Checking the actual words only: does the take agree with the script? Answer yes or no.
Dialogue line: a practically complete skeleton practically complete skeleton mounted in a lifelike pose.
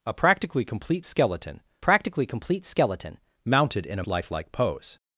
yes